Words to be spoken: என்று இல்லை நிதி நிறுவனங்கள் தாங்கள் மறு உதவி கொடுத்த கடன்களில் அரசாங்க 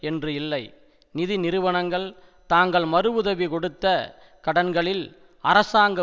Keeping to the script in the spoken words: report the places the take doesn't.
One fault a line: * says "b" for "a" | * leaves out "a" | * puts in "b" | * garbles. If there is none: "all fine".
all fine